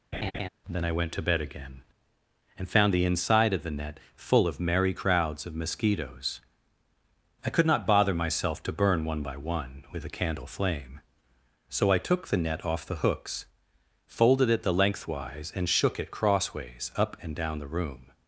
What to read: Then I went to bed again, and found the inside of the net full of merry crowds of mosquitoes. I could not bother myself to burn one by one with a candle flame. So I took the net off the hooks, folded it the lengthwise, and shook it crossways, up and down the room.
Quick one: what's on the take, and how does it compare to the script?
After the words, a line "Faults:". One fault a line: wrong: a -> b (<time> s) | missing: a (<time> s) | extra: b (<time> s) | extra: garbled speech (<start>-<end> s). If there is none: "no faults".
Then I went to bed again, and found the inside of the net full of merry crowds of mosquitoes. I could not bother myself to burn one by one with a candle flame. So I took the net off the hooks, folded it the lengthwise, and shook it crossways, up and down the room.
Faults:
no faults